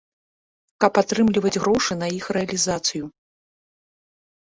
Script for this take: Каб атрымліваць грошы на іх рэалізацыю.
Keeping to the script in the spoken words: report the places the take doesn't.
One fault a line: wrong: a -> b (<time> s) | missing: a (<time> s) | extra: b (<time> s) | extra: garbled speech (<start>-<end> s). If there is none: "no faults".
no faults